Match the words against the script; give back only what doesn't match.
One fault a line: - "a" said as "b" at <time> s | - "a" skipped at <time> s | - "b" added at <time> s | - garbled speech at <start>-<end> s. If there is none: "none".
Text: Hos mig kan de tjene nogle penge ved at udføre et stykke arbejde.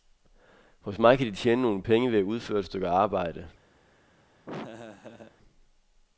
none